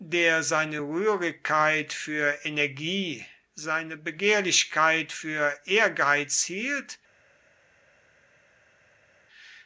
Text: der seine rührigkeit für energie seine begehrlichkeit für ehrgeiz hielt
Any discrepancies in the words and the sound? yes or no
no